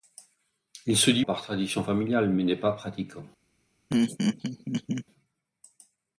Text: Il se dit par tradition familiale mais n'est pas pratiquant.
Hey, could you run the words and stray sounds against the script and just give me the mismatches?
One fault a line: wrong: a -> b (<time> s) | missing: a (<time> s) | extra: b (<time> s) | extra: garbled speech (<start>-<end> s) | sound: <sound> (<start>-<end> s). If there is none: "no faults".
sound: laugh (3.9-5.0 s)